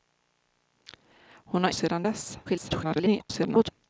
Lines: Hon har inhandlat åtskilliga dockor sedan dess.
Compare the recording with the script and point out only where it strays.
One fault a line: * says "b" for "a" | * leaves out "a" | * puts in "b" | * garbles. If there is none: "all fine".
* leaves out "inhandlat åtskilliga dockor"
* garbles